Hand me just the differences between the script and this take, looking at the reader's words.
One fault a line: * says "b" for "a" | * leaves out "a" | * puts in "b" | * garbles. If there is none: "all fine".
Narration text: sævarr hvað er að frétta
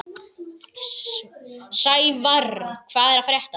all fine